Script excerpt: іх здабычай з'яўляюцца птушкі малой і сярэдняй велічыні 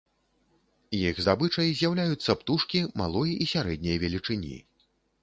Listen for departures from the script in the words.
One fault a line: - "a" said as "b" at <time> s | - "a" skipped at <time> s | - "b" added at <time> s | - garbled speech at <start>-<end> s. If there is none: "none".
none